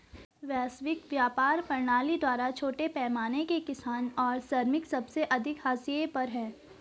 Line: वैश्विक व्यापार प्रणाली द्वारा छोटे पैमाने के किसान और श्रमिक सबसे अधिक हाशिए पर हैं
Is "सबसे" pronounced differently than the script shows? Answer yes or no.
no